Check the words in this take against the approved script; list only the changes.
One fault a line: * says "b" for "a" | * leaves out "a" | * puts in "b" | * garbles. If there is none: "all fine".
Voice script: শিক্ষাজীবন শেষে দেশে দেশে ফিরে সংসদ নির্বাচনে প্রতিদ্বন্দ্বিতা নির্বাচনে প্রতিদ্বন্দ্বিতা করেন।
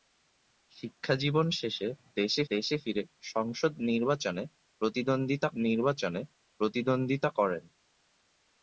all fine